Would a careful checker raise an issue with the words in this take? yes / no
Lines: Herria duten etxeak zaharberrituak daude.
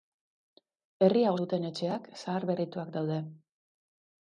no